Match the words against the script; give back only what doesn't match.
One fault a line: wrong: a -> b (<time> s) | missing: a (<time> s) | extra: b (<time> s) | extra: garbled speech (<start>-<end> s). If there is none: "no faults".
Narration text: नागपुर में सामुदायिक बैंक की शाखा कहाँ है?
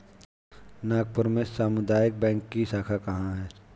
no faults